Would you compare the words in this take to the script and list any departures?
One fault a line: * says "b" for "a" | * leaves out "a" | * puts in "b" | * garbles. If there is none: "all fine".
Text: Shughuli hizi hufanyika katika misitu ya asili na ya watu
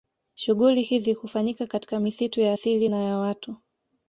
all fine